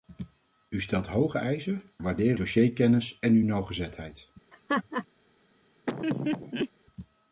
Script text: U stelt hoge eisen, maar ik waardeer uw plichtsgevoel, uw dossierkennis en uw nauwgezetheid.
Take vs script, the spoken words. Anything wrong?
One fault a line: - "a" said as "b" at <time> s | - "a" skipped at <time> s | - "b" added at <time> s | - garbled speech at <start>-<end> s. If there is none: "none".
- "maar" skipped at 1.8 s
- "uw plichtsgevoel uw" skipped at 2.4 s